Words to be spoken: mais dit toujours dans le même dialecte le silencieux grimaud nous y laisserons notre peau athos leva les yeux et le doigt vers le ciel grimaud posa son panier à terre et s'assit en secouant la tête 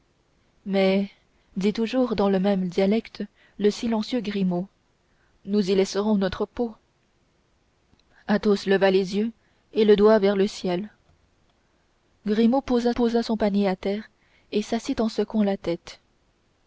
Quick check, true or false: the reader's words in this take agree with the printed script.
false